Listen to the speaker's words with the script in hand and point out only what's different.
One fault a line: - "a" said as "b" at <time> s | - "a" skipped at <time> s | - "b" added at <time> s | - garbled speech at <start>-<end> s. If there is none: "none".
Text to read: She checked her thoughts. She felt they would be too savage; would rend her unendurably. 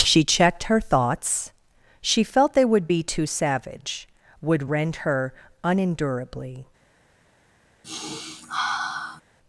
none